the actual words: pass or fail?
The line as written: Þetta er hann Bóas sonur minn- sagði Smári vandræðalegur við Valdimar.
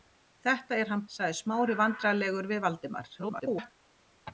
fail